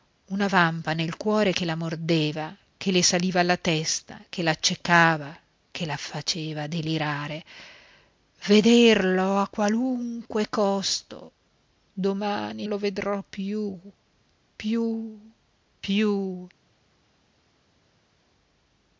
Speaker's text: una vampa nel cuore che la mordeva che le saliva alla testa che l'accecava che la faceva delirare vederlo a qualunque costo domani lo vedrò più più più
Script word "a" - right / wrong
right